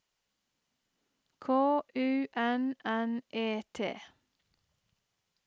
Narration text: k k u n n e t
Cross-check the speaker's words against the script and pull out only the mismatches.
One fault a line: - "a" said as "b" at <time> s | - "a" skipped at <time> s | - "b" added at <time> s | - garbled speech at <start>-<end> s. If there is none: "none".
- "k" skipped at 1.8 s